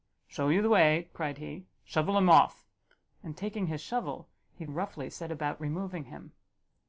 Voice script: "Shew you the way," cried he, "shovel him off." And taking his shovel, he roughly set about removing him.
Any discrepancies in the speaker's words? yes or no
no